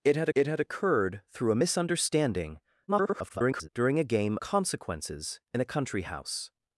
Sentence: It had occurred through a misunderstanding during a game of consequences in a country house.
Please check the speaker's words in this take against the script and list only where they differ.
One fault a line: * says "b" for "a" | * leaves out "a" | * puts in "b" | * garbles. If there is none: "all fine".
* puts in "it had"
* garbles
* leaves out "of"